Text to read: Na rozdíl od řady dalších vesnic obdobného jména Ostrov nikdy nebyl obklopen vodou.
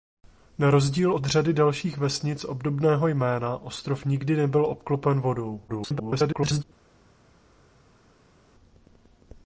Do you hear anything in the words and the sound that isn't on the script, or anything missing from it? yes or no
yes